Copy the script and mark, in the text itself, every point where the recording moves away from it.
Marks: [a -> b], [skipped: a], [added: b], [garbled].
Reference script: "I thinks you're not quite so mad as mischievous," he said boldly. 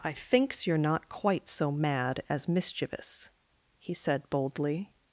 "I thinks you're not quite so mad as mischievous," he said boldly.